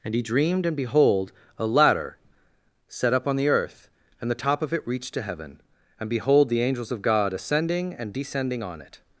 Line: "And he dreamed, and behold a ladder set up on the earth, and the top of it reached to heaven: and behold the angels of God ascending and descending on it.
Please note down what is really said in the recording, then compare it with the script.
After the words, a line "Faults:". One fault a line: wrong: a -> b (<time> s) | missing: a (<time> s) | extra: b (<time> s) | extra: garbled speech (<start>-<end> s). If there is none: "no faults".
"And he dreamed, and behold a ladder set up on the earth, and the top of it reached to heaven: and behold the angels of God ascending and descending on it.
Faults:
no faults